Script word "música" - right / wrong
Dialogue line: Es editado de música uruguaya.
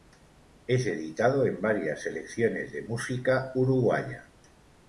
right